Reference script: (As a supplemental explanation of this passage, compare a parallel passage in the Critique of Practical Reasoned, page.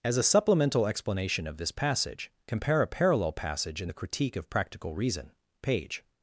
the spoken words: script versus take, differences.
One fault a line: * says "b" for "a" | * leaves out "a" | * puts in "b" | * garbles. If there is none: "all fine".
* says "Reason" for "Reasoned"